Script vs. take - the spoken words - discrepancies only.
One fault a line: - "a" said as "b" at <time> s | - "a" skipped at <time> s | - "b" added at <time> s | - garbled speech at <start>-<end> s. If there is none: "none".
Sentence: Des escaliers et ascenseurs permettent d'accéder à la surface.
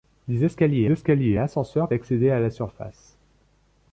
- "escaliers" added at 0.9 s
- "permettent" skipped at 1.9 s